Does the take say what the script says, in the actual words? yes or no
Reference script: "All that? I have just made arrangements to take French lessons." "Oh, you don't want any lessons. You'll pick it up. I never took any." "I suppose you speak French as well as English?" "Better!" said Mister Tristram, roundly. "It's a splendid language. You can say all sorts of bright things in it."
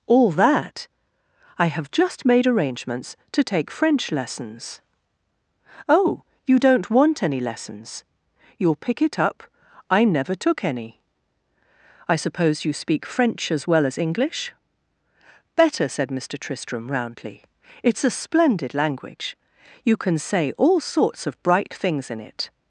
yes